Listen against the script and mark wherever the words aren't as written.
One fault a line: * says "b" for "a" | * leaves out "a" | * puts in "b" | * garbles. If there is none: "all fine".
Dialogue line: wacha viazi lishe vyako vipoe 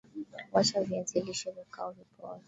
all fine